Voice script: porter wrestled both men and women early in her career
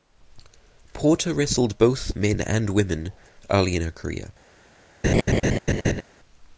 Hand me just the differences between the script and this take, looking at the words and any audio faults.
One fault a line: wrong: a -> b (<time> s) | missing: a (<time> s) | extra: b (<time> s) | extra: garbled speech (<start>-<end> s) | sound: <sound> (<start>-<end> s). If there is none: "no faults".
sound: laugh (5.0-6.0 s)